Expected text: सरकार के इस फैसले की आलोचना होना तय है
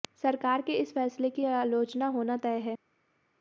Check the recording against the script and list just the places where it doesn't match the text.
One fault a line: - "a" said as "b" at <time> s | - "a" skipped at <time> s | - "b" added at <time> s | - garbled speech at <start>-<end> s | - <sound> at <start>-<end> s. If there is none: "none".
none